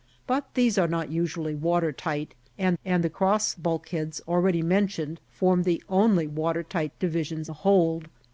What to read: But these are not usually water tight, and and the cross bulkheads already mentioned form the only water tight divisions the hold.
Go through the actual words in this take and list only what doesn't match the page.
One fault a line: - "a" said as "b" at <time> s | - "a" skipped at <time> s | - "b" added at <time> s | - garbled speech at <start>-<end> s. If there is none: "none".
none